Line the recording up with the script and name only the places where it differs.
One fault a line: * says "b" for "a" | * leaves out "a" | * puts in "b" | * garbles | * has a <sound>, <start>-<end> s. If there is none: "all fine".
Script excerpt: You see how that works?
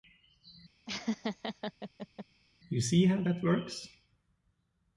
* has a laugh, 0.9-2.3 s